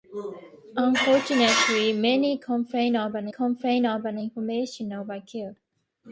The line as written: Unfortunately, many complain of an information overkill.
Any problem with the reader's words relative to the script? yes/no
yes